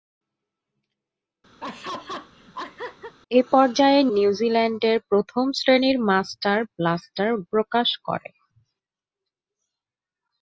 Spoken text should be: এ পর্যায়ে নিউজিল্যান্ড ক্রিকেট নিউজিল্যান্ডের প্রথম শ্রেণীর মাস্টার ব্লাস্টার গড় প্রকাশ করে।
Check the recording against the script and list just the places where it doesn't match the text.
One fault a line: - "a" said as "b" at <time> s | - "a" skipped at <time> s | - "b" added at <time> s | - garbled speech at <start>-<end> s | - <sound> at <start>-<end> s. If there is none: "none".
- laugh at 1.6-3.1 s
- "নিউজিল্যান্ড ক্রিকেট" skipped at 4.0 s
- "গড়" skipped at 7.3 s